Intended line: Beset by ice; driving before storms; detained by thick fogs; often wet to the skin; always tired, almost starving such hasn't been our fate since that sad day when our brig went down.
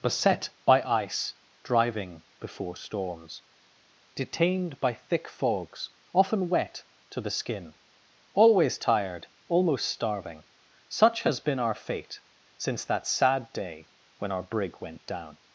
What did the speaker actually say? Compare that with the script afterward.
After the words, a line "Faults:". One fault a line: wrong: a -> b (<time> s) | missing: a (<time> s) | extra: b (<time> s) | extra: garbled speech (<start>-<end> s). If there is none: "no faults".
Beset by ice; driving before storms; detained by thick fogs; often wet to the skin; always tired, almost starving such has been our fate since that sad day when our brig went down.
Faults:
wrong: hasn't -> has (11.2 s)